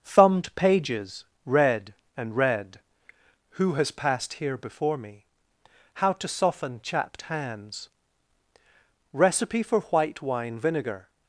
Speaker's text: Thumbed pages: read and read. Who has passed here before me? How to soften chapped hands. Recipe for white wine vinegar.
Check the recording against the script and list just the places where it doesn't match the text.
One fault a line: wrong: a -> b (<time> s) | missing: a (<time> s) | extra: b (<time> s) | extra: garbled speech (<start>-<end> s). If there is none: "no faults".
no faults